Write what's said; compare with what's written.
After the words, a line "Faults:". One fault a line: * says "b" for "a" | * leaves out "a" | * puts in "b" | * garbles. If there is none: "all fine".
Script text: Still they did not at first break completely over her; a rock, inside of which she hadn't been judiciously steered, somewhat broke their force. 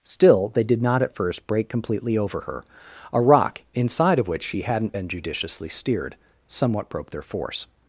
Still they did not at first break completely over her; a rock, inside of which she hadn't been judiciously steered, somewhat broke their force.
Faults:
all fine